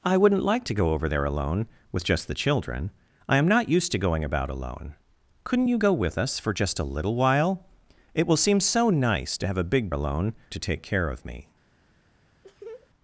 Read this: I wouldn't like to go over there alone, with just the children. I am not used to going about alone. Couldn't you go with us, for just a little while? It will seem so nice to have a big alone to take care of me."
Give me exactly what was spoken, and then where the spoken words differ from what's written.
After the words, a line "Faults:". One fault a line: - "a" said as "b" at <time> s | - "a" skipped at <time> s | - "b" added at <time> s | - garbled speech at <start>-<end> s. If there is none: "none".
I wouldn't like to go over there alone, with just the children. I am not used to going about alone. Couldn't you go with us, for just a little while? It will seem so nice to have a big alone to take care of me."
Faults:
none